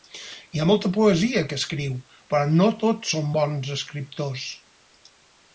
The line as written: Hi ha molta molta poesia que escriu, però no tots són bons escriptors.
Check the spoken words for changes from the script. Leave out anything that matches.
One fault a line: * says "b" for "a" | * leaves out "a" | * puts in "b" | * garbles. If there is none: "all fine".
* leaves out "molta"